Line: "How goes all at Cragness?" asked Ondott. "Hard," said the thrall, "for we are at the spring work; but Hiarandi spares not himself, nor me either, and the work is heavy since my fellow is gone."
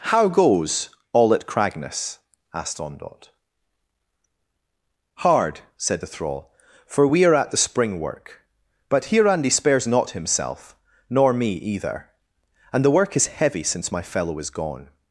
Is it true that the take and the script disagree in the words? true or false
false